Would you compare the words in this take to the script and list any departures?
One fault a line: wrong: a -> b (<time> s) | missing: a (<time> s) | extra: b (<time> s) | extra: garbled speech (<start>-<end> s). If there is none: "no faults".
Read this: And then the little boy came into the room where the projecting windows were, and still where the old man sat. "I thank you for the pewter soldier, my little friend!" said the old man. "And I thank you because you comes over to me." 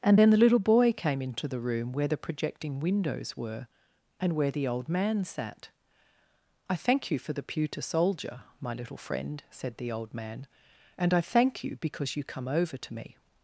missing: still (4.3 s)
wrong: comes -> come (12.2 s)